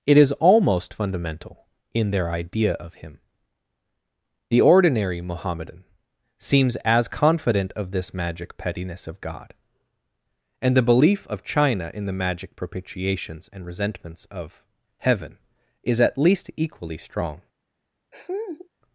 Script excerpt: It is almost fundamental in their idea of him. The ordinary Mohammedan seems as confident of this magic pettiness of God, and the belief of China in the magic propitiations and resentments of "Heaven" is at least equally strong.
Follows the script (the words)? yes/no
yes